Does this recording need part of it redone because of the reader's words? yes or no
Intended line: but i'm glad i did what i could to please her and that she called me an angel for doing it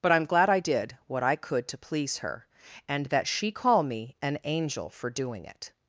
yes